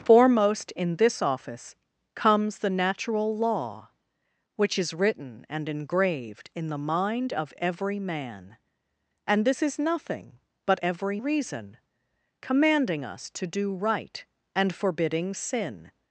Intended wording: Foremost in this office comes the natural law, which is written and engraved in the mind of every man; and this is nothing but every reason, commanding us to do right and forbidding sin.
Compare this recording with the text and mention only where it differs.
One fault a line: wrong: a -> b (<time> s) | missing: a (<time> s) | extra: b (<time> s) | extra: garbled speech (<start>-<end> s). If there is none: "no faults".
no faults